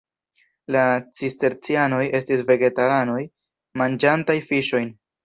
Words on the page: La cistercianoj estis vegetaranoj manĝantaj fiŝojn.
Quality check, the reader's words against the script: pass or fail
pass